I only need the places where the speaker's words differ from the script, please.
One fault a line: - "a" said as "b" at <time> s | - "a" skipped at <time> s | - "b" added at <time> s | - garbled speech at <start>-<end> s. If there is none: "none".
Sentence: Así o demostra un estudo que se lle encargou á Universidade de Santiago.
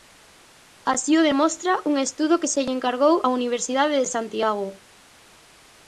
none